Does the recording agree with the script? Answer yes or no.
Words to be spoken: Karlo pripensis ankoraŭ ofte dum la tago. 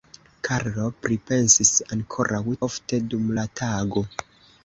yes